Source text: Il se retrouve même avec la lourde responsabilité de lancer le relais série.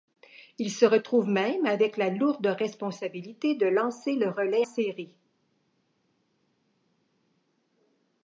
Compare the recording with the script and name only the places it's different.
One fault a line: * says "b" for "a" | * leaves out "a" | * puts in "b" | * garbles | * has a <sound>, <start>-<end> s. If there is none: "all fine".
all fine